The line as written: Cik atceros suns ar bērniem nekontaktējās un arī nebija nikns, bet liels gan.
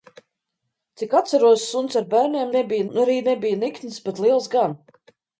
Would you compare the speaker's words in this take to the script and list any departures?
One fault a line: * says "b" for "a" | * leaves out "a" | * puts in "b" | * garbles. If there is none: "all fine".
* says "nebija" for "nekontaktējās"